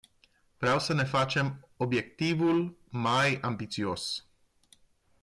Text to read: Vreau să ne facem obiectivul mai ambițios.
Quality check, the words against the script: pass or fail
pass